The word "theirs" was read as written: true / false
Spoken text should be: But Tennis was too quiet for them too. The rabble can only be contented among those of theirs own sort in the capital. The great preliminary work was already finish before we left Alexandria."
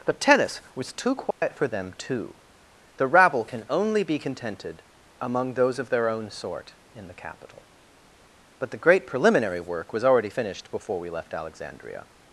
false